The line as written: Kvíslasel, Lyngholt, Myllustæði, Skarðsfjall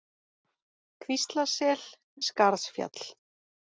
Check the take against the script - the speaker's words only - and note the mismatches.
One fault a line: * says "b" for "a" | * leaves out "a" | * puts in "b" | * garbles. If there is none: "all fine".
* leaves out "Lyngholt Myllustæði"